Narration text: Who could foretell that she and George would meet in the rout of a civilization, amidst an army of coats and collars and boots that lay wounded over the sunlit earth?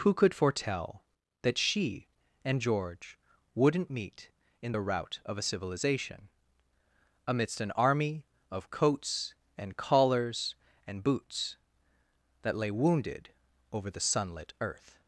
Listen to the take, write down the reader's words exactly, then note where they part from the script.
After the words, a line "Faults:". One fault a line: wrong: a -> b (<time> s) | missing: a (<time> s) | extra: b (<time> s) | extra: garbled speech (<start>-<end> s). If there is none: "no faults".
Who could foretell that she and George wouldn't meet in the rout of a civilization, amidst an army of coats and collars and boots that lay wounded over the sunlit earth?
Faults:
wrong: would -> wouldn't (3.5 s)